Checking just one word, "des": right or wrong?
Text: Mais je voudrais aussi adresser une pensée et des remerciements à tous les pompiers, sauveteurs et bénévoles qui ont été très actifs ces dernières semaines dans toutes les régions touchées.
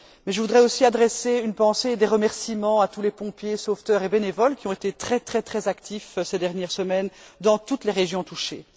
right